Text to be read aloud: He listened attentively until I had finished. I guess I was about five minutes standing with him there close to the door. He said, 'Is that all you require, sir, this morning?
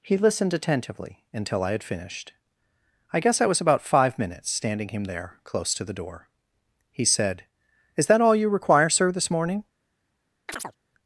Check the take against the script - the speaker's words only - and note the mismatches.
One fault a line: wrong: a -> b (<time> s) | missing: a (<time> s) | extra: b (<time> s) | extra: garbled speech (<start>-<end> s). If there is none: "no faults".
missing: with (4.9 s)